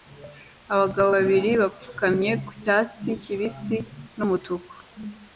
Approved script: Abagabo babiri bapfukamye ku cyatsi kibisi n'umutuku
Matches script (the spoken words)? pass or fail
pass